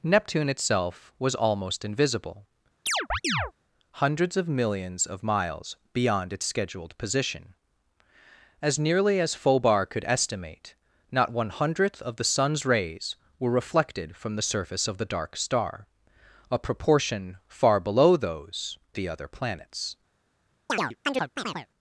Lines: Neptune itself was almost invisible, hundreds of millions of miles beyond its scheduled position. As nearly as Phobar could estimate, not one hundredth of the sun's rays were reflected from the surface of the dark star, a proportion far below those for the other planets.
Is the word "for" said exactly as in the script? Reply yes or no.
no